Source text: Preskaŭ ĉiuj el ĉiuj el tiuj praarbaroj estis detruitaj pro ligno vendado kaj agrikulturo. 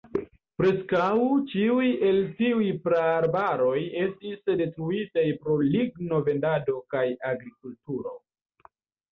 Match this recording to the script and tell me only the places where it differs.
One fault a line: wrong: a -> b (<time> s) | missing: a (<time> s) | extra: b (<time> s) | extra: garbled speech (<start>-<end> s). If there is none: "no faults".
missing: ĉiuj el (2.2 s)